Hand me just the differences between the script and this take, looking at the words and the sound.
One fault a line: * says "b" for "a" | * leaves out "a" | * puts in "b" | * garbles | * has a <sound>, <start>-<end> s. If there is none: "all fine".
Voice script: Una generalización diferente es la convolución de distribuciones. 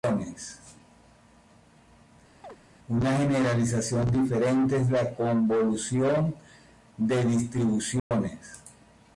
* has a chirp, 2.4-2.6 s
* has a dropout, 8.0-8.1 s